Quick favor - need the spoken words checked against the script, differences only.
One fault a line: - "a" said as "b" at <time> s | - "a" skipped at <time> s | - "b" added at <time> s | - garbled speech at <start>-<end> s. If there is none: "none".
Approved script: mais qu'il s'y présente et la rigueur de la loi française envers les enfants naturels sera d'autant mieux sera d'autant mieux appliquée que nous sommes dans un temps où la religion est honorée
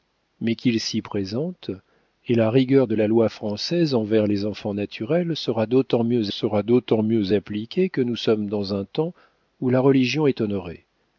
none